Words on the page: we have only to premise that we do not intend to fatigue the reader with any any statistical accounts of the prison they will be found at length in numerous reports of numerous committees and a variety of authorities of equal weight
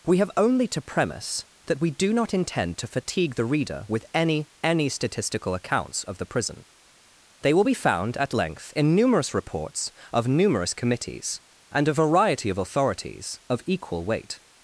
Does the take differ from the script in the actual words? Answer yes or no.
no